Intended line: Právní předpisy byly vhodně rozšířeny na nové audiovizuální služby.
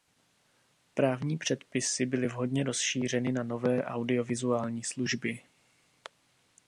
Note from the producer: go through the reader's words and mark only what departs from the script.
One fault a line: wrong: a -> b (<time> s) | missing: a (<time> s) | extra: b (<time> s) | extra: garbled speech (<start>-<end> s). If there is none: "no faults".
no faults